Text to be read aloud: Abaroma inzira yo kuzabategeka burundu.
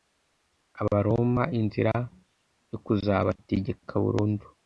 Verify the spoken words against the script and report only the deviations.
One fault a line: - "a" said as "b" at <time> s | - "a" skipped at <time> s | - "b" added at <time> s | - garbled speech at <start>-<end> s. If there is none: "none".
none